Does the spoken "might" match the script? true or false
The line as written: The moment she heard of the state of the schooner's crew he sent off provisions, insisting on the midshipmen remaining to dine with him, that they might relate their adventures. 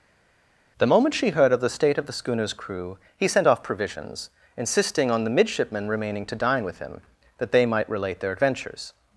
true